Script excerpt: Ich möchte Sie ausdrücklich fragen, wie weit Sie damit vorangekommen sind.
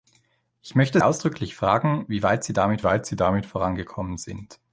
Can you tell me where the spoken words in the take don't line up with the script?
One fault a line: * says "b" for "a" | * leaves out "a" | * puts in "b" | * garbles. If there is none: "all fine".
* leaves out "Sie"
* puts in "weit Sie damit"